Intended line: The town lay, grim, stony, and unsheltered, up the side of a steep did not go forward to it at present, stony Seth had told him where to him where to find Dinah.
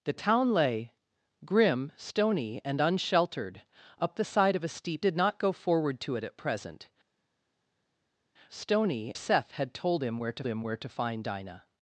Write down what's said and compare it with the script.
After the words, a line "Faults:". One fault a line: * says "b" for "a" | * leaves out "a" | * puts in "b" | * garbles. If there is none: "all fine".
The town lay, grim, stony, and unsheltered, up the side of a steep did not go forward to it at present, stony Seth had told him where to him where to find Dinah.
Faults:
all fine